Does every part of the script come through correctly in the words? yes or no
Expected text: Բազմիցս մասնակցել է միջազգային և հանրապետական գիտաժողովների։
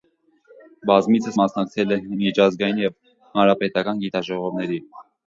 yes